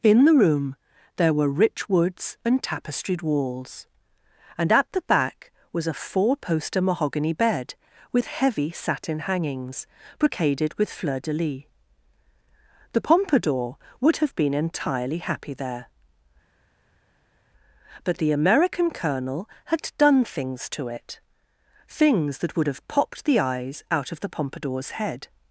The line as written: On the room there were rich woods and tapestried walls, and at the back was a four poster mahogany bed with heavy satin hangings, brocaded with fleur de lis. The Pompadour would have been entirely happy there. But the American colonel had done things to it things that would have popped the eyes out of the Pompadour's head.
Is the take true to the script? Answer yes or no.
no